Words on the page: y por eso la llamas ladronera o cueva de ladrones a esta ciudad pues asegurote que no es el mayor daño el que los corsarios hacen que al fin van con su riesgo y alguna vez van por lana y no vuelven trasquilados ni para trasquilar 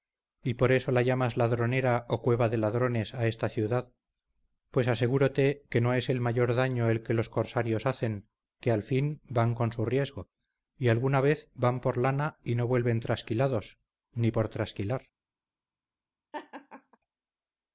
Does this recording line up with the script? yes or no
no